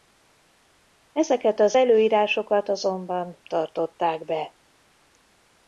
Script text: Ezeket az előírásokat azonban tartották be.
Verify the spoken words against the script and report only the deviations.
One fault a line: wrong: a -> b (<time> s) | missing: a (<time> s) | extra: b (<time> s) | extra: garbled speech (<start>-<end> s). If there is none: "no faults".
no faults